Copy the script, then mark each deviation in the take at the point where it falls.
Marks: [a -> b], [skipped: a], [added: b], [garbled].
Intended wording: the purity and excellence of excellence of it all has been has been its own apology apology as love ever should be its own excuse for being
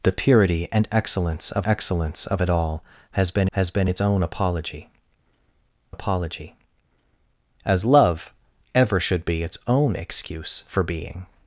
the purity and excellence of excellence of it all has been has been its own apology apology as love ever should be its own excuse for being